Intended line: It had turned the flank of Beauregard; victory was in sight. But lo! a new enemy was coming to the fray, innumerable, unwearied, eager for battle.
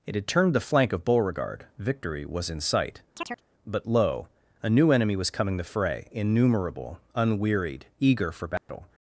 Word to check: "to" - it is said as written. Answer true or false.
false